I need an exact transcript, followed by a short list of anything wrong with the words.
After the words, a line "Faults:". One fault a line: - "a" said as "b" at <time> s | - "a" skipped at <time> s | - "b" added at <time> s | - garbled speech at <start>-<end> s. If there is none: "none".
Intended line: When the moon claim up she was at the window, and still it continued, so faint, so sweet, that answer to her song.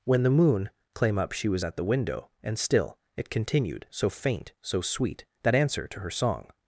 When the moon claim up she was at the window, and still it continued, so faint, so sweet, that answer to her song.
Faults:
none